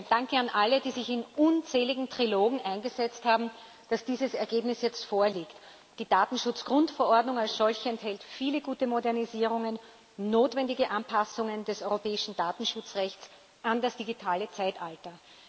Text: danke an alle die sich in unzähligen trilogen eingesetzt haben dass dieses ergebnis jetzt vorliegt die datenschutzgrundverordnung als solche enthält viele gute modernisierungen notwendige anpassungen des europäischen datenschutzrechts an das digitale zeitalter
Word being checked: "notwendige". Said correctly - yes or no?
yes